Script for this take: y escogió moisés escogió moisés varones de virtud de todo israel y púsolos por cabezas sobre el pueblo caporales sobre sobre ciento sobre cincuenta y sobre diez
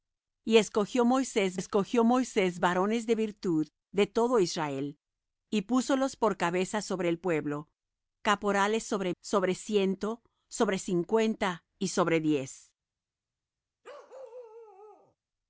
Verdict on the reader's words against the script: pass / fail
pass